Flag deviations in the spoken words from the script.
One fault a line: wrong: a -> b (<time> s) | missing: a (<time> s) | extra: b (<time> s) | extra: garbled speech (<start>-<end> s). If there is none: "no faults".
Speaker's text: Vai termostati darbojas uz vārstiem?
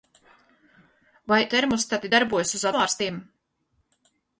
no faults